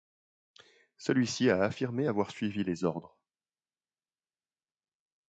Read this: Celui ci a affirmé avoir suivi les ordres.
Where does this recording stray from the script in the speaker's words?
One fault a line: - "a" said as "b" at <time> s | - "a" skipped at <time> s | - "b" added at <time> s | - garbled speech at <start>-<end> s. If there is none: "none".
none